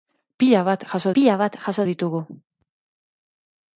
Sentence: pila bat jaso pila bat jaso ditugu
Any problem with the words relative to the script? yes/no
no